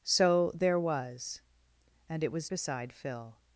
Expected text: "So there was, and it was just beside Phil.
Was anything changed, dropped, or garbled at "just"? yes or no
yes